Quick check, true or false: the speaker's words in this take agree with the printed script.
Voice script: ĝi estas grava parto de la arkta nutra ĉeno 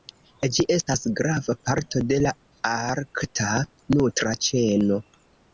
true